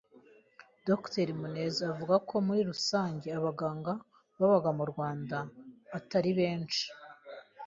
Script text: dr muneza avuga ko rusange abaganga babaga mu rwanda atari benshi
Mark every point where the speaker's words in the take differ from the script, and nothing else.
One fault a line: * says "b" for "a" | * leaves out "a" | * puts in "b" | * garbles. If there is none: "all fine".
* puts in "muri"